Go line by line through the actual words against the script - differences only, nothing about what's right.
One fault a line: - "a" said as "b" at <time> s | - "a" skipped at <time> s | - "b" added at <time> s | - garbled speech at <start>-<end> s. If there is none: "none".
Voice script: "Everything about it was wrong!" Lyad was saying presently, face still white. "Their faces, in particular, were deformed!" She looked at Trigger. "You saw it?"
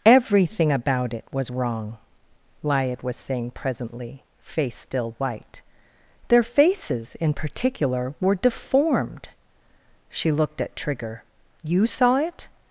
none